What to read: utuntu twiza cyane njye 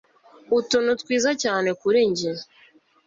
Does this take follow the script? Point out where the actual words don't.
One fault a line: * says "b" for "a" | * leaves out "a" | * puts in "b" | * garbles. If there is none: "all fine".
* puts in "kuri"